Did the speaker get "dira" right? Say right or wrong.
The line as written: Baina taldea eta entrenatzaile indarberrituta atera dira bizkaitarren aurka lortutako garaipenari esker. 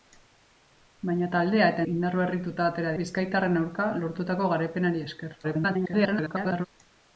wrong